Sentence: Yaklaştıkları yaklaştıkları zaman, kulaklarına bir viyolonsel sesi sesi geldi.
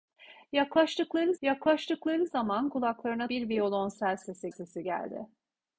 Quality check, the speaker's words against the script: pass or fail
pass